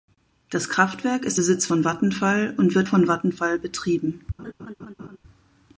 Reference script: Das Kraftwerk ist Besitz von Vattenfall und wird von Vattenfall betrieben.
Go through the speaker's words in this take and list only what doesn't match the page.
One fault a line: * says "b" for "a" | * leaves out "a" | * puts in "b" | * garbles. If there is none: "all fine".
all fine